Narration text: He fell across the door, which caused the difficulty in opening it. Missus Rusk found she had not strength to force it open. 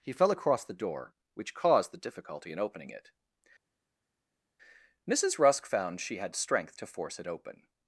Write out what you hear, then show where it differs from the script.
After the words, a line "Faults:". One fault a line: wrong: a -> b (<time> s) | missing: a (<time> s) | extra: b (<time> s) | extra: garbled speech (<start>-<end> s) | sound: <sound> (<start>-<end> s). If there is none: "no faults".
He fell across the door, which caused the difficulty in opening it. Missus Rusk found she had strength to force it open.
Faults:
missing: not (6.3 s)